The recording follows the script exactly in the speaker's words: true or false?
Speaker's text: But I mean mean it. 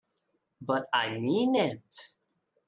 false